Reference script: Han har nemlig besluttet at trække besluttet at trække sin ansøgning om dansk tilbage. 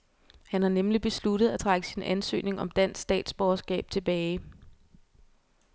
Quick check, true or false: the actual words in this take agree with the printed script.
false